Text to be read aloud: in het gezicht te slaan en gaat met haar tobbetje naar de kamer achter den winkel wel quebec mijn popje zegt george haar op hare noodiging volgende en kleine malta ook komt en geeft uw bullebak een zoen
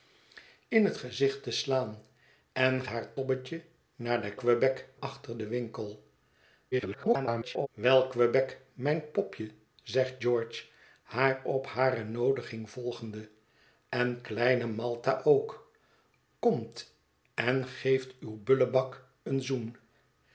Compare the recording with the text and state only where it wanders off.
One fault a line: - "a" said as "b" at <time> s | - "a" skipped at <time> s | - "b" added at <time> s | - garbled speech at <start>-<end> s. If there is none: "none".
- "gaat met" skipped at 2.9 s
- "kamer" said as "quebec" at 4.4 s
- garbled speech at 6.7-7.7 s